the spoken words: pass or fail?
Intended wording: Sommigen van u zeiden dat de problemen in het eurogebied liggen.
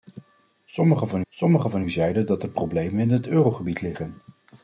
fail